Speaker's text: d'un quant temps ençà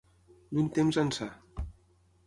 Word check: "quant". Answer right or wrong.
wrong